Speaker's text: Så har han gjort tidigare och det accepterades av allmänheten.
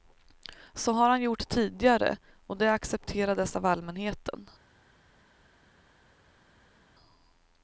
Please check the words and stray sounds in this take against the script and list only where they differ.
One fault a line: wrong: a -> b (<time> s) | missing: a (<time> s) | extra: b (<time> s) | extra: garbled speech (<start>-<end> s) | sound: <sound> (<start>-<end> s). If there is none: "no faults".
no faults